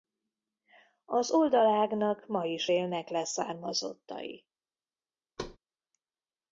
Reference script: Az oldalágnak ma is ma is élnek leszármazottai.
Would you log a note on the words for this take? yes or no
yes